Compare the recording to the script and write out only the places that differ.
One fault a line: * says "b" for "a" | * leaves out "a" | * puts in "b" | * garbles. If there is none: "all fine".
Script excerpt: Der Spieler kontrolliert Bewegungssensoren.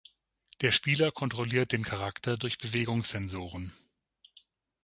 * puts in "den Charakter durch"